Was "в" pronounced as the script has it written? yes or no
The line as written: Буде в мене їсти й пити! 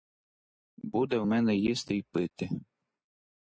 yes